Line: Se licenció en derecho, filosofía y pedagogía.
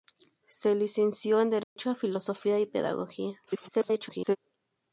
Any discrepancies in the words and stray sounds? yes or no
yes